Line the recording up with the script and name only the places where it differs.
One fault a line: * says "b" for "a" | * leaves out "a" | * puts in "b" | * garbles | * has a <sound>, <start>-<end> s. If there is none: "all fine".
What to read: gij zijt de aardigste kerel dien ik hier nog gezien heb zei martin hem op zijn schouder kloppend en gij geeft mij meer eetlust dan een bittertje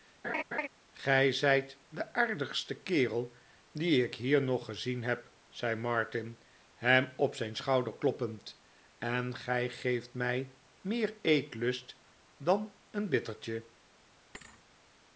* has a laugh, 0.2-0.7 s
* has a thud, 14.3-14.6 s